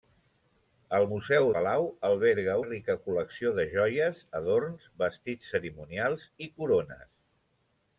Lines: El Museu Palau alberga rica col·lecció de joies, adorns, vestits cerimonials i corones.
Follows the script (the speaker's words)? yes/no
yes